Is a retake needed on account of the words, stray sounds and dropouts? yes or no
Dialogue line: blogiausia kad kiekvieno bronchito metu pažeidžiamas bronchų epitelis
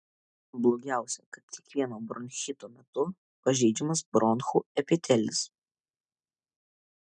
no